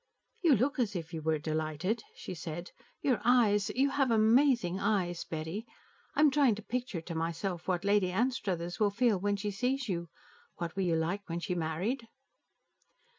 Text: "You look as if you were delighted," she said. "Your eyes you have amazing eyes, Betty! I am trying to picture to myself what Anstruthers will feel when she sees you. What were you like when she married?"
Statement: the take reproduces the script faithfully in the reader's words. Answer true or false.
false